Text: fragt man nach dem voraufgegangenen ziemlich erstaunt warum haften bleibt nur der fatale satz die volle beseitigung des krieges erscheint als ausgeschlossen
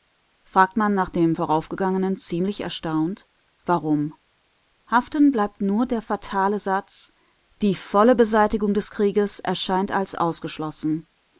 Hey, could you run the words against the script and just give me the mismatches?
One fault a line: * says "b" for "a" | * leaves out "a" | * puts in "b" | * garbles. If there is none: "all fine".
all fine